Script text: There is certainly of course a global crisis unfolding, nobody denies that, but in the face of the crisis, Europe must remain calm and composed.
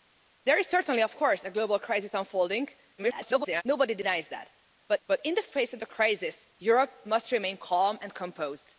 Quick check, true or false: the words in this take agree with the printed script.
false